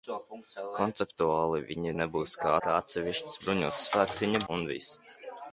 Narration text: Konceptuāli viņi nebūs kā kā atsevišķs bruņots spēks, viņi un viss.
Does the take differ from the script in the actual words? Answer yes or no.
no